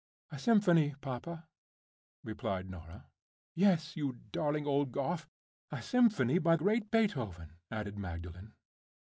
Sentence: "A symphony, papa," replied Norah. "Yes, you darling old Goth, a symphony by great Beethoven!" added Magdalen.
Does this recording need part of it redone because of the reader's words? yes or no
no